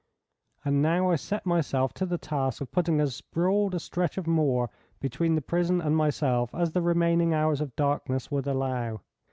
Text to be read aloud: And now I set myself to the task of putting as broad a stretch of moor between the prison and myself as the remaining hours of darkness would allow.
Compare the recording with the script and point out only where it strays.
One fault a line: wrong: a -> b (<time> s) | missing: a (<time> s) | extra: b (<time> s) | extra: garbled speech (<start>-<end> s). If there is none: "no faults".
no faults